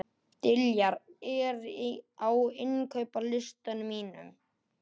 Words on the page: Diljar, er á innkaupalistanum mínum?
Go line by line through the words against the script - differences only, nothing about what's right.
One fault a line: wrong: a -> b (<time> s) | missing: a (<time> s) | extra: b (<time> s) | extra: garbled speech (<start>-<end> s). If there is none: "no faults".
no faults